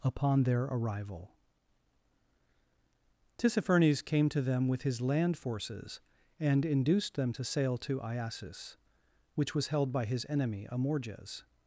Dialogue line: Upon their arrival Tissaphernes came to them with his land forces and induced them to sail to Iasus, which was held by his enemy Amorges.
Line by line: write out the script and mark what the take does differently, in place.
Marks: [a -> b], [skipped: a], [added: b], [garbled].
Upon their arrival Tissaphernes came to them with his land forces and induced them to sail to Iasus, which was held by his enemy Amorges.